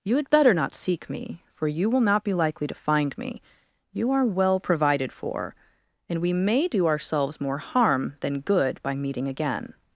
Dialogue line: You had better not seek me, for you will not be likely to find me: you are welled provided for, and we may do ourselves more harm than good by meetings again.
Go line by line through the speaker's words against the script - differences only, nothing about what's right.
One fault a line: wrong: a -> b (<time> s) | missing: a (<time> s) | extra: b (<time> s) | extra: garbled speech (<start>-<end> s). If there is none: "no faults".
wrong: welled -> well (4.2 s)
wrong: meetings -> meeting (8.9 s)